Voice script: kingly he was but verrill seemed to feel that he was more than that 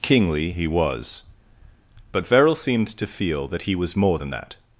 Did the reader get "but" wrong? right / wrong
right